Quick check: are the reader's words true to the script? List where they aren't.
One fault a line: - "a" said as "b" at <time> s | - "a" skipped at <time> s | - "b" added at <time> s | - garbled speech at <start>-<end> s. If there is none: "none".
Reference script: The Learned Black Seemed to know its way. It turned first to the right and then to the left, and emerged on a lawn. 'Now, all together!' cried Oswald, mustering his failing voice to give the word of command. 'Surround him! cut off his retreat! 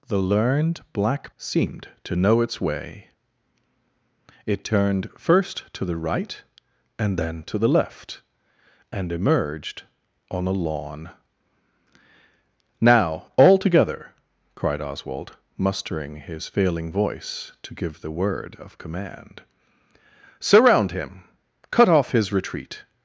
none